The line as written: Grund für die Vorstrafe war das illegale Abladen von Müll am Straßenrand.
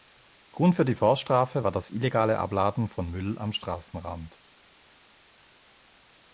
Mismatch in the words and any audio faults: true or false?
false